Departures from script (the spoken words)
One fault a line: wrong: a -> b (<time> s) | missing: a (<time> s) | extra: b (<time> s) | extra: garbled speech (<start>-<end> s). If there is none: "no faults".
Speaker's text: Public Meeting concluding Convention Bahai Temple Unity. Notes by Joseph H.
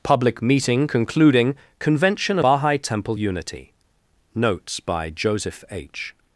no faults